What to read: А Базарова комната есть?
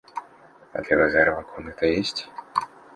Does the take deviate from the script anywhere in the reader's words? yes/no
yes